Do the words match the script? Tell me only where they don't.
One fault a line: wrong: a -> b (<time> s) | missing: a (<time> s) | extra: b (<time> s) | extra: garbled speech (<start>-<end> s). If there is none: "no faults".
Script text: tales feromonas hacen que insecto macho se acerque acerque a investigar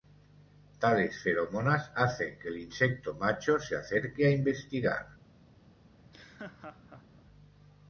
extra: el (2.5 s)
missing: acerque (4.3 s)